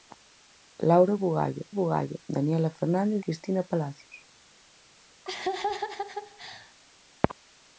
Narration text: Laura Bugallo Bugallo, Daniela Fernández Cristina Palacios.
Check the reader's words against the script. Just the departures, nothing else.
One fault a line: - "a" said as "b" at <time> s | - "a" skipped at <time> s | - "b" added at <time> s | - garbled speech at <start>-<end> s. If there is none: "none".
none